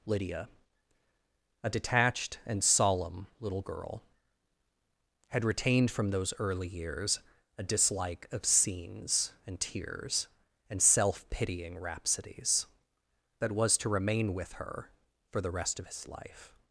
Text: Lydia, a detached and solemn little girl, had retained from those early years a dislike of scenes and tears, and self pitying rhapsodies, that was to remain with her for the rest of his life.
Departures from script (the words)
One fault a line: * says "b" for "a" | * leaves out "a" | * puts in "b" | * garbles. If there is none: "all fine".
all fine